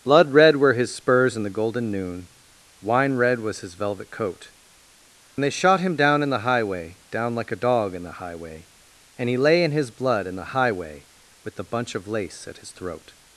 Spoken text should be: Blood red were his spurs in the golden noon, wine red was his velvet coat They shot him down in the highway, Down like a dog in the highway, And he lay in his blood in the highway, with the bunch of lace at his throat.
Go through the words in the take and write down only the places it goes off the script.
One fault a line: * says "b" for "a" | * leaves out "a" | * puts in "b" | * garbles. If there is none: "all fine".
all fine